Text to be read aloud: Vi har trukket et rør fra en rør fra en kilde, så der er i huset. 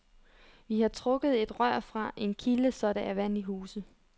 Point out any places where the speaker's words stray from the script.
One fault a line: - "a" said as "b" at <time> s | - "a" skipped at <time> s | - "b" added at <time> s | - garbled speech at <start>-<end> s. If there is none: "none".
- "rør fra en" skipped at 2.3 s
- "vand" added at 3.1 s